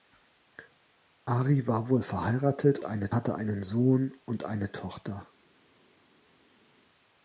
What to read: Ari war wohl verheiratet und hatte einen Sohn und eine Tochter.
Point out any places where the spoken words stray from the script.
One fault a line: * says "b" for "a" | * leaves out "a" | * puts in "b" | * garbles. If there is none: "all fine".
* says "eine" for "und"